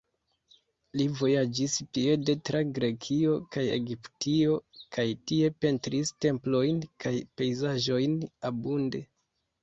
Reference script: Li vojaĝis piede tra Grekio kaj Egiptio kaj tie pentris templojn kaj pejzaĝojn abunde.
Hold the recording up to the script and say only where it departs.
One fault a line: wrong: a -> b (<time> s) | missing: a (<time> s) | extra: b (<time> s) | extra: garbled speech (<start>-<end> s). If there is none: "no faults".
no faults